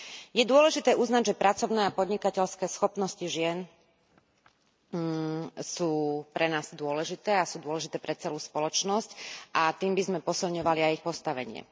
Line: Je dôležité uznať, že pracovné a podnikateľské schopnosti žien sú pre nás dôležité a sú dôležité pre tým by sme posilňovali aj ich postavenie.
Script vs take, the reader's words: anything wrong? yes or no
yes